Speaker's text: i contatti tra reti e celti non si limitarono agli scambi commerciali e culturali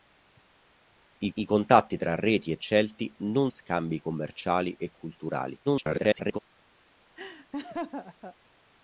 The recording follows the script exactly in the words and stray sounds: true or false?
false